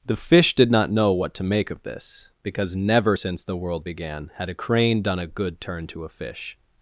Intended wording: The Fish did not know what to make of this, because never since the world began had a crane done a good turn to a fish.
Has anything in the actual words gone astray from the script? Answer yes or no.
no